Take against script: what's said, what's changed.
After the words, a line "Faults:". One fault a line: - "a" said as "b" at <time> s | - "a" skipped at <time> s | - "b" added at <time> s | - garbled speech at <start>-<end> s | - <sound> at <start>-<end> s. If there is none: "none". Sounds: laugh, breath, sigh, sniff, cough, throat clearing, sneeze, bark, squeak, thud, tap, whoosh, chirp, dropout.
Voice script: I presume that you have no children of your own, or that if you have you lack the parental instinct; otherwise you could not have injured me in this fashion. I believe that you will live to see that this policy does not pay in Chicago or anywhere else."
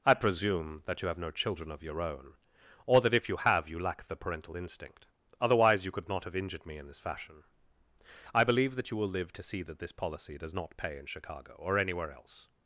I presume that you have no children of your own, or that if you have you lack the parental instinct; otherwise you could not have injured me in this fashion. I believe that you will live to see that this policy does not pay in Chicago or anywhere else."
Faults:
none